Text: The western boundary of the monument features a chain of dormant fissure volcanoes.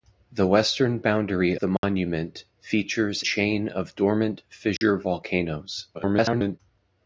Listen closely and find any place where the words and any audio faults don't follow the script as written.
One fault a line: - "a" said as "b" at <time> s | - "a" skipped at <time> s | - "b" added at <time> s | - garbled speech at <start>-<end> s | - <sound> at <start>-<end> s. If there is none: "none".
- "of" skipped at 1.6 s
- dropout at 1.8-1.8 s
- "a" skipped at 3.2 s
- dropout at 4.8-4.8 s
- garbled speech at 5.9-6.6 s